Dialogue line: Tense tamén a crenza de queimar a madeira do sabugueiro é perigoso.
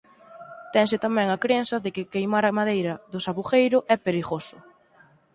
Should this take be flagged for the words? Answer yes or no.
yes